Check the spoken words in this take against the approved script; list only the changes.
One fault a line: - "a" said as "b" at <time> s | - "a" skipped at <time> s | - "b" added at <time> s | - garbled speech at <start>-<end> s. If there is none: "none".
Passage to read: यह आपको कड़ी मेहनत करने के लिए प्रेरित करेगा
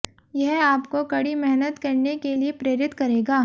none